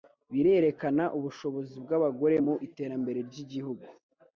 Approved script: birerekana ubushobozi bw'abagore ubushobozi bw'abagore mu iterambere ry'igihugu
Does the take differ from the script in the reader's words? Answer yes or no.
yes